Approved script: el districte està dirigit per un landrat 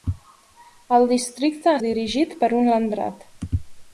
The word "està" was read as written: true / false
false